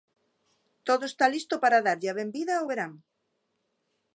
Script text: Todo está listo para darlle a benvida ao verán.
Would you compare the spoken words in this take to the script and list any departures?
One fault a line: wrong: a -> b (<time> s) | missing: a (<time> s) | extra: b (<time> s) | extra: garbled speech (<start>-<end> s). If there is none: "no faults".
no faults